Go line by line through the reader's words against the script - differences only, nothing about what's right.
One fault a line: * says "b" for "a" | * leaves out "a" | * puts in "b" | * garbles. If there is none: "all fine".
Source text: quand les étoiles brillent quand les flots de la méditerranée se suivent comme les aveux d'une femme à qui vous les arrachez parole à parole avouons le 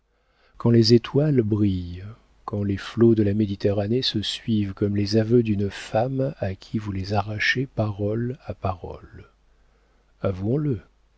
all fine